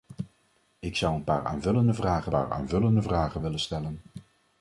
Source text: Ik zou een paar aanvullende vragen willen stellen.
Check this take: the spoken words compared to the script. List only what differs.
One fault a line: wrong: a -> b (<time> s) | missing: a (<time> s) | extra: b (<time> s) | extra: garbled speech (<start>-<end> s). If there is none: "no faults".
extra: paar aanvullende vragen (2.3 s)